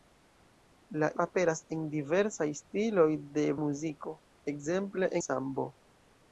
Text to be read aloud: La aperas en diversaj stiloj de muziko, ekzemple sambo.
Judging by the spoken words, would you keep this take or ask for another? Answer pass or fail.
pass